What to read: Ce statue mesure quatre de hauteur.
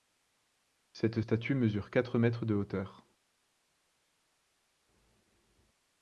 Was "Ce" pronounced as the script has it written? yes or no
no